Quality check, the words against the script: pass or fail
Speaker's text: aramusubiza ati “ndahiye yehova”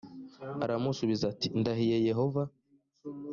pass